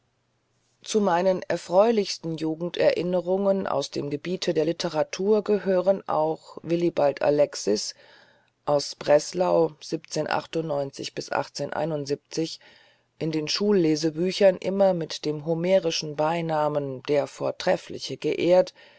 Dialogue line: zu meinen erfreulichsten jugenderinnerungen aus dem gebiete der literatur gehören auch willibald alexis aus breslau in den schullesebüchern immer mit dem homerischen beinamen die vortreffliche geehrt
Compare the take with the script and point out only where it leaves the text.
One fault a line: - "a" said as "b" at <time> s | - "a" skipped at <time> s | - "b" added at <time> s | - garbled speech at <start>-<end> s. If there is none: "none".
- "die" said as "der" at 17.0 s